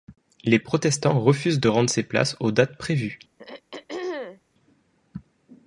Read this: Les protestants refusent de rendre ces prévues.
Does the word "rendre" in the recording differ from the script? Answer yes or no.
no